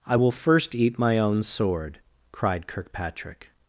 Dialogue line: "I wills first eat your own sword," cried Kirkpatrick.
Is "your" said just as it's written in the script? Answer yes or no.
no